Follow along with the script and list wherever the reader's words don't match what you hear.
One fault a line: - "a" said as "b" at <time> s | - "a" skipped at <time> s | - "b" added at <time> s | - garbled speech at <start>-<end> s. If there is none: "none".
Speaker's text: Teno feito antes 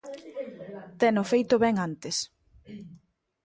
- "ben" added at 1.6 s